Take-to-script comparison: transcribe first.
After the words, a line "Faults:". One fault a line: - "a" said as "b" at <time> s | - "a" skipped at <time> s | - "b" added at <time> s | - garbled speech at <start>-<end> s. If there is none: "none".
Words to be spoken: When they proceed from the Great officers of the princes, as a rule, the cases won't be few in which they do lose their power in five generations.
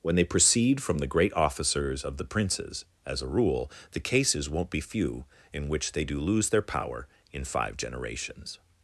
When they proceed from the Great officers of the princes, as a rule, the cases won't be few in which they do lose their power in five generations.
Faults:
none